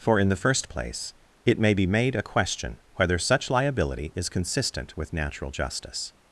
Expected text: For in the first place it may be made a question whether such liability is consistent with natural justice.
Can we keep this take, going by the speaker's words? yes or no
yes